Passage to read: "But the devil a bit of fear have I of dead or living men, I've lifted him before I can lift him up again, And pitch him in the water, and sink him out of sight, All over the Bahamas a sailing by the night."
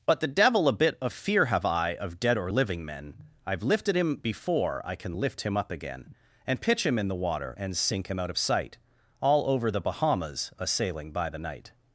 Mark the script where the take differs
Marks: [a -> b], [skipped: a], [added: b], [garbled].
"But the devil a bit of fear have I of dead or living men, I've lifted him before I can lift him up again, And pitch him in the water, and sink him out of sight, All over the Bahamas a sailing by the night."